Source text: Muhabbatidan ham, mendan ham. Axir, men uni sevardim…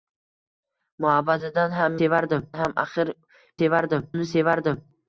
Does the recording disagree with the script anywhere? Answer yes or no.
yes